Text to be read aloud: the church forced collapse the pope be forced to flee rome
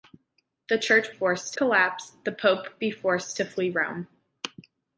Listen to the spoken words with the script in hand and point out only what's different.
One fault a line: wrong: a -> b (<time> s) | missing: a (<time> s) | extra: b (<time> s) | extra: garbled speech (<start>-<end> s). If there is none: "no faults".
no faults